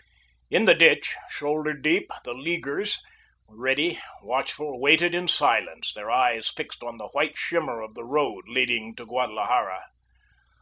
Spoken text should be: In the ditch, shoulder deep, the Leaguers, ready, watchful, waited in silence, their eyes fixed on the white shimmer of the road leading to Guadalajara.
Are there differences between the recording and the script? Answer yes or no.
no